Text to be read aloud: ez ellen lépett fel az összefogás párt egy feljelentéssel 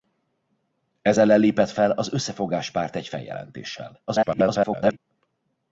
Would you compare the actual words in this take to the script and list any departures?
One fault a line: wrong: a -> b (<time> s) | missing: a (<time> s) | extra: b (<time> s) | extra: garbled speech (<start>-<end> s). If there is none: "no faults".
extra: garbled speech (4.1-5.0 s)